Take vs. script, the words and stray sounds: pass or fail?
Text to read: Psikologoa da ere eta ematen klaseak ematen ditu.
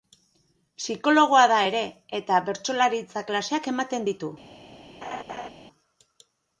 fail